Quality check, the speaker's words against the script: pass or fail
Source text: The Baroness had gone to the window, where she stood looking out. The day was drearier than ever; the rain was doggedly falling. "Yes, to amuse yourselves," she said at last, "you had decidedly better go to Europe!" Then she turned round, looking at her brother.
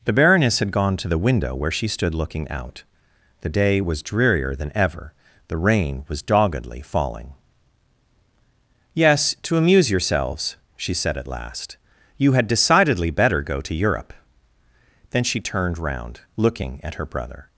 pass